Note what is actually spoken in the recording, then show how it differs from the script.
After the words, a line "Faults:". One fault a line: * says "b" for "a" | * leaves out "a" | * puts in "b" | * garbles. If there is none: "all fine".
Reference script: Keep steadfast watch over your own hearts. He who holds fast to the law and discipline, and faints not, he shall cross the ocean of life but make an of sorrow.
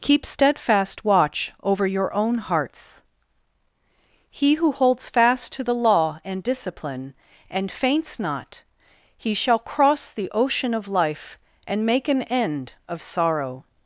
Keep steadfast watch over your own hearts. He who holds fast to the law and discipline, and faints not, he shall cross the ocean of life and make an end of sorrow.
Faults:
* says "and" for "but"
* puts in "end"